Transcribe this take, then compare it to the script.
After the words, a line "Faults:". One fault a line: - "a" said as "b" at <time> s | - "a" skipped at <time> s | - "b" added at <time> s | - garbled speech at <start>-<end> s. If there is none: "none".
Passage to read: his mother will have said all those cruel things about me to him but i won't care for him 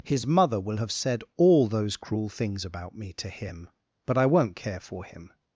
his mother will have said all those cruel things about me to him but i won't care for him
Faults:
none